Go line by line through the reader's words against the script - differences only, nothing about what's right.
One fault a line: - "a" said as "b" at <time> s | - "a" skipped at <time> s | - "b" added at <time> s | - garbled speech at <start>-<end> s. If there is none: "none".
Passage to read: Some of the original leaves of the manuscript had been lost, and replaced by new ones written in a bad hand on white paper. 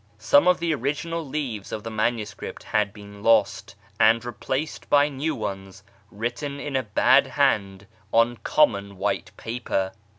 - "common" added at 8.4 s